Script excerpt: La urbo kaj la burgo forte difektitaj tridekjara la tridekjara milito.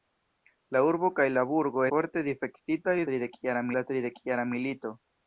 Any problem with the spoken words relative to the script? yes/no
no